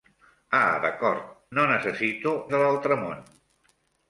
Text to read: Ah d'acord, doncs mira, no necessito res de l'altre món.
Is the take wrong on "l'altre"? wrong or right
right